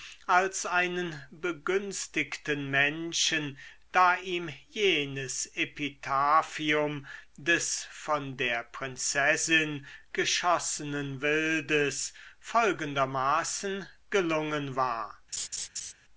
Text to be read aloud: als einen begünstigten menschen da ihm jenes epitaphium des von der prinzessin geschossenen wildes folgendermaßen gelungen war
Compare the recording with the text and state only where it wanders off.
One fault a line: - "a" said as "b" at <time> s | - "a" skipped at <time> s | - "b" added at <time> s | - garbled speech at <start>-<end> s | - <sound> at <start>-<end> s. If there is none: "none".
- laugh at 15.3-15.9 s